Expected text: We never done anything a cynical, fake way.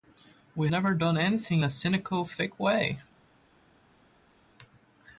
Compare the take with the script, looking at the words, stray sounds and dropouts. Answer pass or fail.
pass